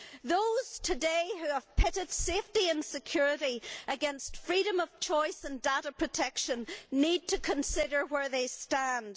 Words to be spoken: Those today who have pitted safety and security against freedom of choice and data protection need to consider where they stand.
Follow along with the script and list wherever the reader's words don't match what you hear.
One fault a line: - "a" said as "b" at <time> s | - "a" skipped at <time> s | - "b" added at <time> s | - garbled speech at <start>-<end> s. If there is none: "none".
none